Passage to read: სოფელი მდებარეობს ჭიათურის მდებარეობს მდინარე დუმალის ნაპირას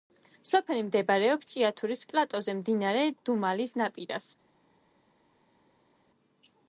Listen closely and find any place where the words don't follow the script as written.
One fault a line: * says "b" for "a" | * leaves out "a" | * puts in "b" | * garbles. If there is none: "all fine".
* says "პლატოზე" for "მდებარეობს"